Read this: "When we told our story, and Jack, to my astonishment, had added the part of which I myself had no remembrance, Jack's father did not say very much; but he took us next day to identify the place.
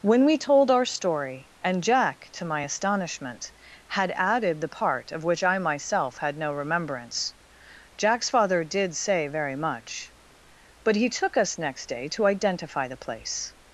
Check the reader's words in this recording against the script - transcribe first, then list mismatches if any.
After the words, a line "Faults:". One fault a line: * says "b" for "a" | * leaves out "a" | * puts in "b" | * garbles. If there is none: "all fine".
"When we told our story, and Jack, to my astonishment, had added the part of which I myself had no remembrance, Jack's father did say very much; but he took us next day to identify the place.
Faults:
* leaves out "not"